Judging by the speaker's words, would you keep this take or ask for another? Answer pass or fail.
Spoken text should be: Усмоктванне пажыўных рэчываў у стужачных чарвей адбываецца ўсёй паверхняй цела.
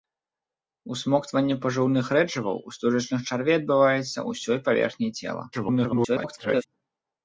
fail